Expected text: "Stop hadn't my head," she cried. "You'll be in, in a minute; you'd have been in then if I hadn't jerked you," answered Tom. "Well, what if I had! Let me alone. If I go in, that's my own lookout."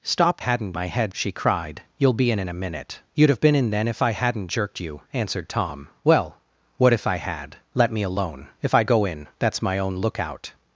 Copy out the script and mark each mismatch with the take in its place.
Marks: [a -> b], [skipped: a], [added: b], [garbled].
"Stop hadn't my head," she cried. "You'll be in, in a minute; you'd have been in then if I hadn't jerked you," answered Tom. "Well, what if I had! Let me alone. If I go in, that's my own lookout."